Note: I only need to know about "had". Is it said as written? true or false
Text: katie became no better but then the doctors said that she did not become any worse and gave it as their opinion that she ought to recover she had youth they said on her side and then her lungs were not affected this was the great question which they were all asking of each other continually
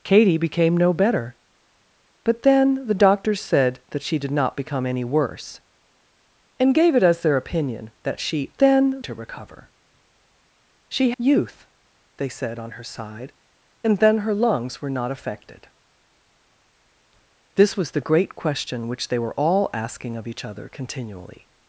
false